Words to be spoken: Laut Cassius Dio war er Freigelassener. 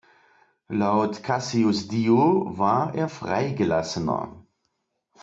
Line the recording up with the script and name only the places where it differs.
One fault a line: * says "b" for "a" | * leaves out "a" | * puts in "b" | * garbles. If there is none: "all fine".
all fine